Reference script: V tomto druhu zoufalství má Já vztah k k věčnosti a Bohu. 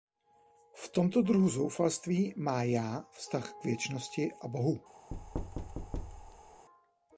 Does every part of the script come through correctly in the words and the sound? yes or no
no